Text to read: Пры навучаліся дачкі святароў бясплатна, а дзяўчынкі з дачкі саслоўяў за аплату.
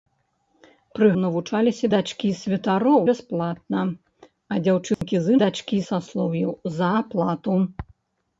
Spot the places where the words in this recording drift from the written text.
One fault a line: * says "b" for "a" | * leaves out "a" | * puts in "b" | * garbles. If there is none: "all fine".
all fine